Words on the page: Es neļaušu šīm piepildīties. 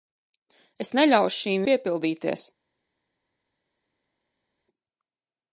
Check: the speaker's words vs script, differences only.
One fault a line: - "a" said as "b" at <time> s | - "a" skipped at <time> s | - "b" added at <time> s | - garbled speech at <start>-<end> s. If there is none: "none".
none